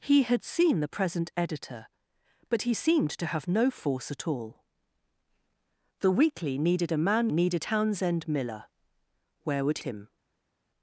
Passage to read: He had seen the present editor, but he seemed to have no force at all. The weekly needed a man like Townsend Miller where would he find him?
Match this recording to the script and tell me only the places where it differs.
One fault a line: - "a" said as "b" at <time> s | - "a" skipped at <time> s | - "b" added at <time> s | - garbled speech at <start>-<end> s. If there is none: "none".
- "like" said as "needed" at 7.3 s
- "he find" skipped at 9.8 s